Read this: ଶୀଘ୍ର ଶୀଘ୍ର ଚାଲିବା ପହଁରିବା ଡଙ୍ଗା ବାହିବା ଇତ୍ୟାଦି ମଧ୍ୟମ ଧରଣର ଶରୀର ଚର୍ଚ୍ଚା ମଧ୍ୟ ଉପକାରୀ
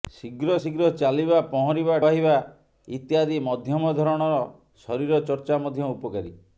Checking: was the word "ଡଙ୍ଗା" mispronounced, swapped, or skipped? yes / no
yes